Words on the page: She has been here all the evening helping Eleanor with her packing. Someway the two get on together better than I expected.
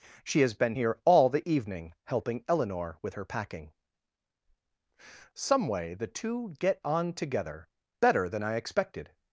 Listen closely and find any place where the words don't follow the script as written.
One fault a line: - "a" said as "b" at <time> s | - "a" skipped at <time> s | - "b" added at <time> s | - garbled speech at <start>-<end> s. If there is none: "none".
none